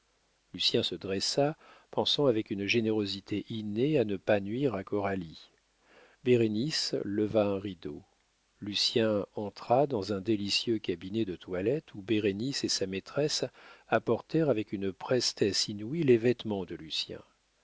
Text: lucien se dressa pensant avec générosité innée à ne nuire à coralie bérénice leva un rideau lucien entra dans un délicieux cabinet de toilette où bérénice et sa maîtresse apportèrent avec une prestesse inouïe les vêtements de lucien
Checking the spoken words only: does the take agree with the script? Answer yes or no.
no